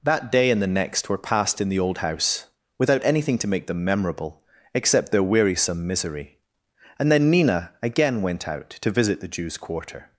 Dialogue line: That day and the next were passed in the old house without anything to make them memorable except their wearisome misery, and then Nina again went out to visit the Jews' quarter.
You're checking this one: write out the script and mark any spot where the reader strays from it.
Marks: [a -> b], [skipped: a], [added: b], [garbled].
That day and the next were passed in the old house without anything to make them memorable except their wearisome misery, and then Nina again went out to visit the Jews' quarter.